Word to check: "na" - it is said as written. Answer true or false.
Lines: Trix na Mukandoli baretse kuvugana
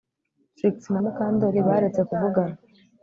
true